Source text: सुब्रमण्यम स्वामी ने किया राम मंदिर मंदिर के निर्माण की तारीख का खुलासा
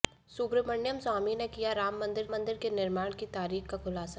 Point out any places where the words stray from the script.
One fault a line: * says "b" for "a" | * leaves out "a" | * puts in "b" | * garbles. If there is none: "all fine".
all fine